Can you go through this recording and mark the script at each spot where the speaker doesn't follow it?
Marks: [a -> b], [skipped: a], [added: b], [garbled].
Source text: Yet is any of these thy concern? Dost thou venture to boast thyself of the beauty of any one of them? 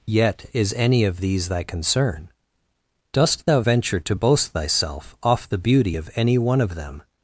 Yet is any of these thy concern? Dost thou venture to boast thyself [of -> off] the beauty of any one of them?